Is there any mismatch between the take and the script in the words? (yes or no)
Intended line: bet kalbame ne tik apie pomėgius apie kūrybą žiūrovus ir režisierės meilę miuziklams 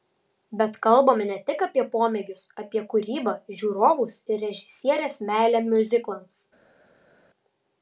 no